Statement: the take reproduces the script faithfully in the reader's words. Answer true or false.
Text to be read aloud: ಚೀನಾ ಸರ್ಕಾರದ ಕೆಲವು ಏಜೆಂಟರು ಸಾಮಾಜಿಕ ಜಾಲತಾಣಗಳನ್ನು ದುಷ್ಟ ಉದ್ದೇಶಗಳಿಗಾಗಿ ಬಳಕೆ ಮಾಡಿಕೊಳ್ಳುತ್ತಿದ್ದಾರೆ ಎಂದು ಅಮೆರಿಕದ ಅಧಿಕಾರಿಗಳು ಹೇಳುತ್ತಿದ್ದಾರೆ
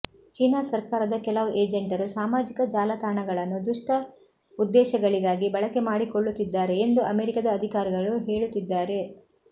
true